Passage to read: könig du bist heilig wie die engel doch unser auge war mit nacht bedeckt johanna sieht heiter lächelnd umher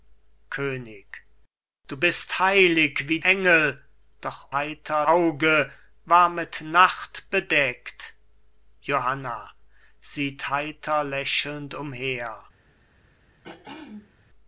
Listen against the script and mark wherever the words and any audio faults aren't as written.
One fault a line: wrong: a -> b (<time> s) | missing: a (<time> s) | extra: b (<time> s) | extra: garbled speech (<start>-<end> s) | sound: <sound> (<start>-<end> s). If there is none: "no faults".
missing: die (3.2 s)
wrong: unser -> heiter (4.5 s)
sound: throat clearing (13.4-14.1 s)